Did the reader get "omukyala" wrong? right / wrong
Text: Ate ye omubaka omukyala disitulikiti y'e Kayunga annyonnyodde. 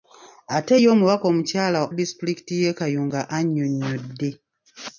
right